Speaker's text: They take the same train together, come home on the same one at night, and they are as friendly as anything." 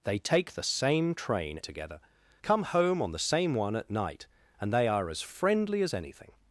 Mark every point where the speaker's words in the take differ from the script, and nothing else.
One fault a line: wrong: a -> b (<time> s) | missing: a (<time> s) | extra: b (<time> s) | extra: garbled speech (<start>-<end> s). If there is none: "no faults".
no faults